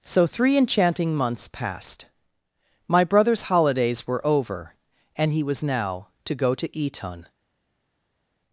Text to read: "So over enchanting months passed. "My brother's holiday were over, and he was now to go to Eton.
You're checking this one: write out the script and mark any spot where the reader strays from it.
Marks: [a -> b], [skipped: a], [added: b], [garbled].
"So [over -> three] enchanting months passed. "My brother's [holiday -> holidays] were over, and he was now to go to Eton.